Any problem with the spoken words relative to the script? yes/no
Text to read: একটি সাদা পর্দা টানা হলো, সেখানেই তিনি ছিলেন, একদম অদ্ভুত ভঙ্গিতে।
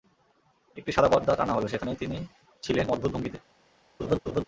yes